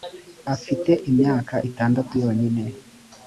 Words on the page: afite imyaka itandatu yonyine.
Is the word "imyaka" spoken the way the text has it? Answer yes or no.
yes